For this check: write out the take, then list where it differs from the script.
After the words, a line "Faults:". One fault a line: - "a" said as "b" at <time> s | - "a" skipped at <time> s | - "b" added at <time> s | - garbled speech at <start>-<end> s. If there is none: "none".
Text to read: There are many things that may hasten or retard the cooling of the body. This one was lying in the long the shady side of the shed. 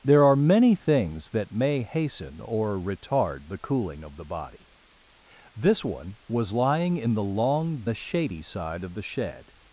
There are many things that may hasten or retard the cooling of the body. This one was lying in the long the shady side of the shed.
Faults:
none